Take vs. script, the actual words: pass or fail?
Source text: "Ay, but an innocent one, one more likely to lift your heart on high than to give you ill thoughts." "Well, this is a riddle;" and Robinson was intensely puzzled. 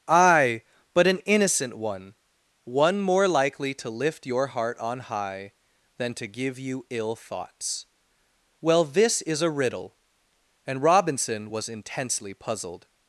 pass